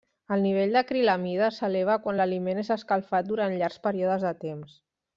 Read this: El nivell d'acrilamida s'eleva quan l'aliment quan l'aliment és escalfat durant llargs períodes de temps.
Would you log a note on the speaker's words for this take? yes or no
yes